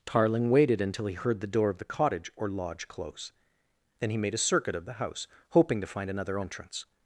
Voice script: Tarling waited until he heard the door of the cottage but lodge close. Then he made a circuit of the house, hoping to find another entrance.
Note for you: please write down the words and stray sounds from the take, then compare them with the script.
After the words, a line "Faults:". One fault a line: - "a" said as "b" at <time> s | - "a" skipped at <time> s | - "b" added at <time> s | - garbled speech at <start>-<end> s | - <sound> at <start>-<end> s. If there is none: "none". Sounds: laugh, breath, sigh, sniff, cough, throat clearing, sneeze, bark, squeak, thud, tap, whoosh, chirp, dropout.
Tarling waited until he heard the door of the cottage or lodge close. Then he made a circuit of the house, hoping to find another entrance.
Faults:
- "but" said as "or" at 2.4 s